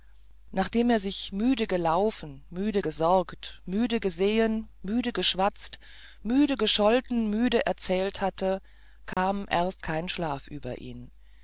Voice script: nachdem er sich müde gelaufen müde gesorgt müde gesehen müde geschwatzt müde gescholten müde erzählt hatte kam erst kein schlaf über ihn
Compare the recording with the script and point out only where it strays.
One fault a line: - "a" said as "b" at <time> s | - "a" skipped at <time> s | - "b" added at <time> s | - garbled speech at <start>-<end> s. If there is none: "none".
none